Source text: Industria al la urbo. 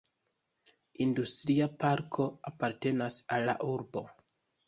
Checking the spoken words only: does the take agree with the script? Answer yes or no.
no